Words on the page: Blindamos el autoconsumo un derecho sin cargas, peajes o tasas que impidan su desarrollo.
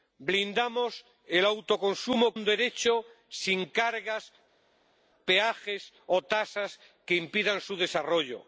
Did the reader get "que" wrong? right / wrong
right